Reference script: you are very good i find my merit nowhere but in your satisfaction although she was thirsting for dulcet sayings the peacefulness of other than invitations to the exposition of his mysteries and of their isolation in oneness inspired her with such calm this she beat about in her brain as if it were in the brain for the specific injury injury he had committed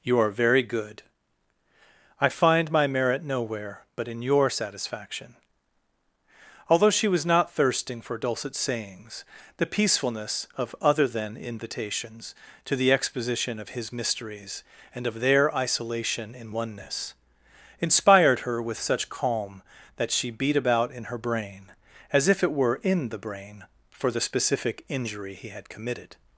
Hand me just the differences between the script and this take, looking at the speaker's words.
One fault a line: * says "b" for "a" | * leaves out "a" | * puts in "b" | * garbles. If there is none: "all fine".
* puts in "not"
* says "that" for "this"
* leaves out "injury"